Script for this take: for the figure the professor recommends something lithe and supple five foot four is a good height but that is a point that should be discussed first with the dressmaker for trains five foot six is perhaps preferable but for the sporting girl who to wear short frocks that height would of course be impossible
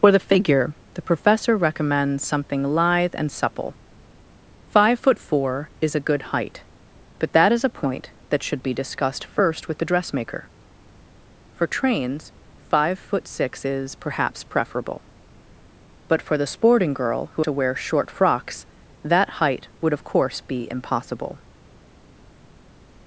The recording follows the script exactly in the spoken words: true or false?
true